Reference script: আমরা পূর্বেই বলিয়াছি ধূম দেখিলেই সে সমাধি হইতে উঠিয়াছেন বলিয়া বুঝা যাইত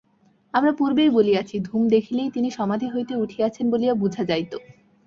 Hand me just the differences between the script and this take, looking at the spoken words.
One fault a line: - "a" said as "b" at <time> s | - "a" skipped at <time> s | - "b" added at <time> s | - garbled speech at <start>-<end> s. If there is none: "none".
- "সে" said as "তিনি" at 2.3 s